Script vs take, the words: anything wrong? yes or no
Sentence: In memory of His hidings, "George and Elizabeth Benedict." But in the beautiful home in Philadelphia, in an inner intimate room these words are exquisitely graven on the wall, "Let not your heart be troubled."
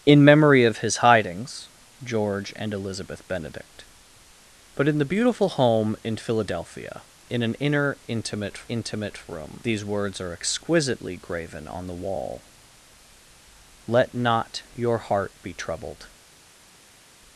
yes